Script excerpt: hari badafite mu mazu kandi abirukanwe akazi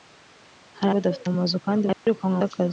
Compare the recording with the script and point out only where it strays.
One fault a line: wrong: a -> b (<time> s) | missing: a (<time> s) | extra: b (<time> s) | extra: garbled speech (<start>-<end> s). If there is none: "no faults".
no faults